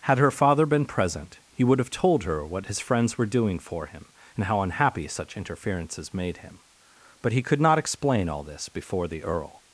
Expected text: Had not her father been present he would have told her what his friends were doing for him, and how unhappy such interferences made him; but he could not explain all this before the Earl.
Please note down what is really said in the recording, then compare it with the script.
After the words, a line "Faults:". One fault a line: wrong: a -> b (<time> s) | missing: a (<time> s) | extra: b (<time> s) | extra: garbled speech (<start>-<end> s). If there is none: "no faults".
Had her father been present he would have told her what his friends were doing for him, and how unhappy such interferences made him; but he could not explain all this before the Earl.
Faults:
missing: not (0.2 s)